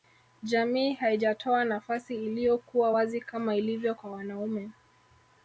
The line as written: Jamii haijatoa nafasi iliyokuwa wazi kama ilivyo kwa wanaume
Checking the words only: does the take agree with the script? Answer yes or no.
yes